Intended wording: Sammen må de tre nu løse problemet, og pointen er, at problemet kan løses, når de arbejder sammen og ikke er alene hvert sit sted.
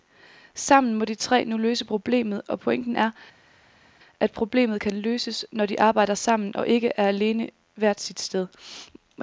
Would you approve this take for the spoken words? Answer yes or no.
yes